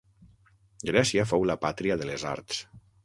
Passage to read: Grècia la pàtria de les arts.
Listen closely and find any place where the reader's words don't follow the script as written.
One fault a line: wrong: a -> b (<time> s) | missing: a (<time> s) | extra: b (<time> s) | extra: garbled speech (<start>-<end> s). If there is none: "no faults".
extra: fou (1.3 s)